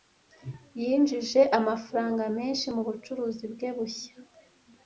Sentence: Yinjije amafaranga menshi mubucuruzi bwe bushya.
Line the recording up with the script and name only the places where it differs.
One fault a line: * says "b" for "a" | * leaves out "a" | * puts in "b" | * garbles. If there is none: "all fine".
all fine